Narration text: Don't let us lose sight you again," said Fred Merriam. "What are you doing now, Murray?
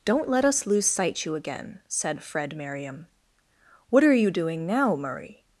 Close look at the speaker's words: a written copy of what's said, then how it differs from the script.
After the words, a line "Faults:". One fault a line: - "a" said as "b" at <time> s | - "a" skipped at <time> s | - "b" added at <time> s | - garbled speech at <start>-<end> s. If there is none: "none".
Don't let us lose sight you again," said Fred Merriam. "What are you doing now, Murray?
Faults:
none